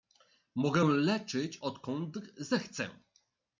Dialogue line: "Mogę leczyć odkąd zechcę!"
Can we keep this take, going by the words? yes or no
yes